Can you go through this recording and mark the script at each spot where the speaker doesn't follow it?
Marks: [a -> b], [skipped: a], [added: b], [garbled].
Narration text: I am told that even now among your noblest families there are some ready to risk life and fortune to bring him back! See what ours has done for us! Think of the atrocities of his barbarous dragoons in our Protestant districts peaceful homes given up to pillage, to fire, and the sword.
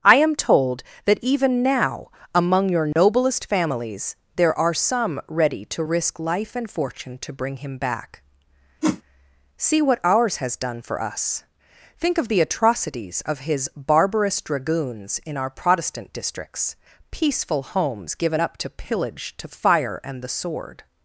I am told that even now among your noblest families there are some ready to risk life and fortune to bring him back! See what ours has done for us! Think of the atrocities of his barbarous dragoons in our Protestant districts peaceful homes given up to pillage, to fire, and the sword.